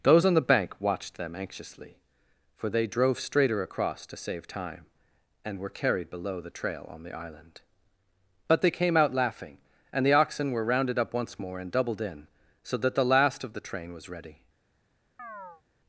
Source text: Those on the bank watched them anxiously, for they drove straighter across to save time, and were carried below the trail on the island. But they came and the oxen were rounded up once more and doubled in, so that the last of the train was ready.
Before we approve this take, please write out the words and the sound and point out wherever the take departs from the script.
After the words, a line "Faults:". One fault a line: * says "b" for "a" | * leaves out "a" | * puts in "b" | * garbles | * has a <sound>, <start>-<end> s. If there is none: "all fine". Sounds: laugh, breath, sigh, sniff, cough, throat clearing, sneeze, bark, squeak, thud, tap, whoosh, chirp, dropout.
Those on the bank watched them anxiously, for they drove straighter across to save time, and were carried below the trail on the island. But they came out laughing, and the oxen were rounded up once more and doubled in, so that the last of the train was ready.
Faults:
* puts in "out laughing"
* has a chirp, 15.2-15.6 s